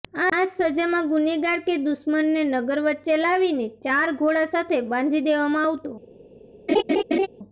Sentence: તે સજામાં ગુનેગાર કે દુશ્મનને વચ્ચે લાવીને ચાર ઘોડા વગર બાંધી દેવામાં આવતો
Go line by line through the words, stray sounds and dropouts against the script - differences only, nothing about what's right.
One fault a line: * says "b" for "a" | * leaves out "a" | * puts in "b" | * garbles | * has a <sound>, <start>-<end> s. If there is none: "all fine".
* says "આ" for "તે"
* puts in "નગર"
* says "સાથે" for "વગર"
* has a laugh, 6.7-7.3 s